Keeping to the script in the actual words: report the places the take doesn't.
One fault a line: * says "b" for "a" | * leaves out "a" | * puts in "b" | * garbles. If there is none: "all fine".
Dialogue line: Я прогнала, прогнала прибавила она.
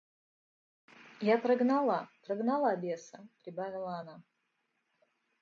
* puts in "беса"